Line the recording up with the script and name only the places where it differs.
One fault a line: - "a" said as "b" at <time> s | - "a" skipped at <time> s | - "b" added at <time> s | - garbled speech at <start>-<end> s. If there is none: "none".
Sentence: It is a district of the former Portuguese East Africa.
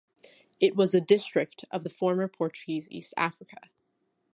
- "is" said as "was" at 0.8 s